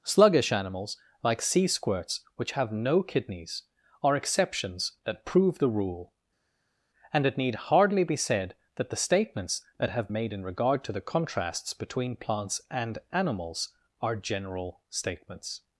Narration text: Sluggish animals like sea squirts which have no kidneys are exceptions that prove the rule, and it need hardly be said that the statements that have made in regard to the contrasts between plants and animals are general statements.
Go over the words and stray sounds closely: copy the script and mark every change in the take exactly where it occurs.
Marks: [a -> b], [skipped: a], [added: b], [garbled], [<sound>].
Sluggish animals like sea squirts which have no kidneys are exceptions that prove the rule, and it need hardly be said that the statements that have made in regard to the contrasts between plants and animals are general statements.